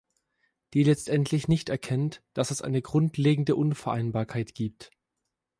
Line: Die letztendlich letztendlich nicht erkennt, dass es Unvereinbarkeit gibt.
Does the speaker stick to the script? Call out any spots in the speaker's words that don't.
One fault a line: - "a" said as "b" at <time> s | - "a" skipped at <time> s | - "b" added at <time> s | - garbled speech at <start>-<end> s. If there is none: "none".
- "letztendlich" skipped at 1.5 s
- "eine grundlegende" added at 2.6 s